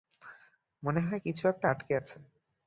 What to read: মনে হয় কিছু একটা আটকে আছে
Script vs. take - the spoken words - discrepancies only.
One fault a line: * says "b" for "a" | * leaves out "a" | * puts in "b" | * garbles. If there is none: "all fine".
all fine